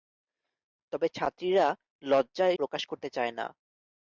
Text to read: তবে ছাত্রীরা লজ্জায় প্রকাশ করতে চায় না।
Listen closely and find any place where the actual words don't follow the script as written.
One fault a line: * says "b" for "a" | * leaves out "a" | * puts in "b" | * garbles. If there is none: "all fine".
all fine